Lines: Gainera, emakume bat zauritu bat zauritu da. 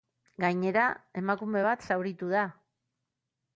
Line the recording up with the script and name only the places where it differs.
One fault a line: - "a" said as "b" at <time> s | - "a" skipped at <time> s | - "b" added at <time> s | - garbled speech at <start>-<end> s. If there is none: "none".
- "bat zauritu" skipped at 2.3 s